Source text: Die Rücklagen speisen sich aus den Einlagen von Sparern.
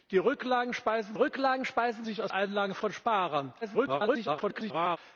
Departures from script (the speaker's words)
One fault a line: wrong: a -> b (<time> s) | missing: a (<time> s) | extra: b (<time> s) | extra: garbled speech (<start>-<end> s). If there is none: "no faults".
extra: Rücklagen speisen (1.1 s)
missing: den (2.3 s)
extra: garbled speech (3.6-5.0 s)